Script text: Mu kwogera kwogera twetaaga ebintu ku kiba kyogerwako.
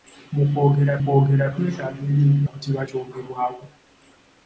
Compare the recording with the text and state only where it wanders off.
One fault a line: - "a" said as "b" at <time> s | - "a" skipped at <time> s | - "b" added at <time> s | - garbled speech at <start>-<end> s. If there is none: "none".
none